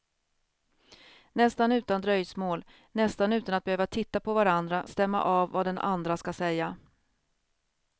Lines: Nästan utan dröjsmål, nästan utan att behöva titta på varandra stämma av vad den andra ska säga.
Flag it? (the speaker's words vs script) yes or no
no